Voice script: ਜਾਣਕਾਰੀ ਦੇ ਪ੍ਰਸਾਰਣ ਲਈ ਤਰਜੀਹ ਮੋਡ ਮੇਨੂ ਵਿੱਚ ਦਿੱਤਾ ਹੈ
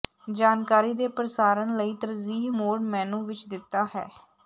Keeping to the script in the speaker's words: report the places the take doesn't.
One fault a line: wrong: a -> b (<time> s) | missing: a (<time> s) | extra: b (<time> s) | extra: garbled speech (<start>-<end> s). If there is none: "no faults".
no faults